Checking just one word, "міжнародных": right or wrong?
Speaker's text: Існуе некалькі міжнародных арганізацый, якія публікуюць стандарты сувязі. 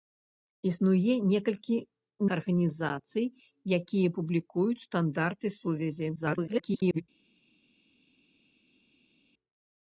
wrong